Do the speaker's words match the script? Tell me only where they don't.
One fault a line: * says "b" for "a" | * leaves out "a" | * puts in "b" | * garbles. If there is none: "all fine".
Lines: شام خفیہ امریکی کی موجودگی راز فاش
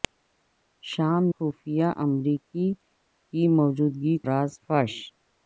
all fine